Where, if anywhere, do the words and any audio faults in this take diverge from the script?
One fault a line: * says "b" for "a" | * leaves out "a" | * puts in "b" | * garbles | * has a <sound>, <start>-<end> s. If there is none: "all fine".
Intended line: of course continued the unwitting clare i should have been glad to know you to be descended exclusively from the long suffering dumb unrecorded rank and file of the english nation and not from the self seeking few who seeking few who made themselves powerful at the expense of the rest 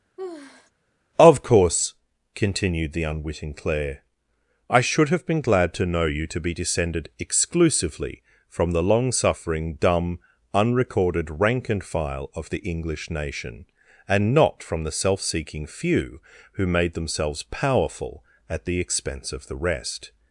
* has a sigh, 0.2-0.7 s
* leaves out "seeking few who"